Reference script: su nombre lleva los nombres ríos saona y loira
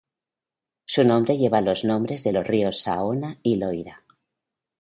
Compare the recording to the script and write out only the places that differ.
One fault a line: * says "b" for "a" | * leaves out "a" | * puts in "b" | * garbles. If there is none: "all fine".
* puts in "de los"